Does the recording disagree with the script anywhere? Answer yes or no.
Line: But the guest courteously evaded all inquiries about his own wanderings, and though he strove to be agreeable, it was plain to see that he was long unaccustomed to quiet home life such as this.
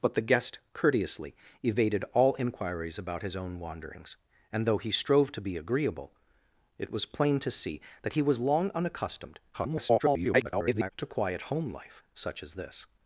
yes